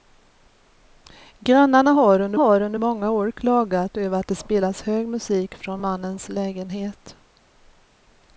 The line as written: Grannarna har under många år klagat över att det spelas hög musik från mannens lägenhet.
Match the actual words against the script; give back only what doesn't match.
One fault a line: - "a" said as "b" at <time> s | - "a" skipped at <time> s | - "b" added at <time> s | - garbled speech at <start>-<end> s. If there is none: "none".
- "har under" added at 2.3 s